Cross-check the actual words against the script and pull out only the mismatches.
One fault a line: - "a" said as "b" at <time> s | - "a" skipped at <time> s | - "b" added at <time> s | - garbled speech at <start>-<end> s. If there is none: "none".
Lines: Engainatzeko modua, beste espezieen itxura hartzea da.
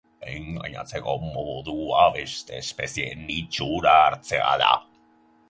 none